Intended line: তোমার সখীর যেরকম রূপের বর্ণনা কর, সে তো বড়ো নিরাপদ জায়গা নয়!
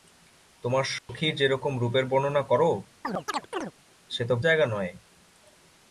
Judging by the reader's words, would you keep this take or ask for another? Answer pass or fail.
fail